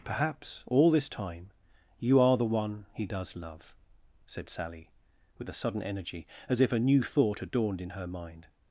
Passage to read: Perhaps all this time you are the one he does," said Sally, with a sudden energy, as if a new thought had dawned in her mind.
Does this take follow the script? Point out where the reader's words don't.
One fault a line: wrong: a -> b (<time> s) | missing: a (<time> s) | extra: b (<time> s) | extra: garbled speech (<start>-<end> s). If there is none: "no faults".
extra: love (3.4 s)